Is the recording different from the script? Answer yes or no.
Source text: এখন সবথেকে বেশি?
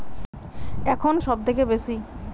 no